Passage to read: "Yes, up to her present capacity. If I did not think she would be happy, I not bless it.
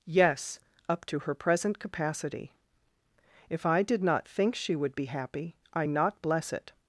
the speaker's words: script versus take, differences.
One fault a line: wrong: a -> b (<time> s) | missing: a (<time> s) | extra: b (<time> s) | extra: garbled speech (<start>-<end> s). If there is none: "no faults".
no faults